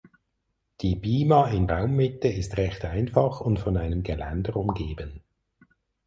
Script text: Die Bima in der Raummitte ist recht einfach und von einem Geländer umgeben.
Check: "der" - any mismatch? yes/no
yes